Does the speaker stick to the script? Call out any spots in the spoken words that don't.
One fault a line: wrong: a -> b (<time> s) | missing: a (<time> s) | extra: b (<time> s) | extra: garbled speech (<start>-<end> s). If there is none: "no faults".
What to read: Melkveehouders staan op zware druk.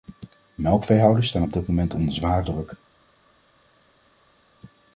extra: dit moment onder (1.5 s)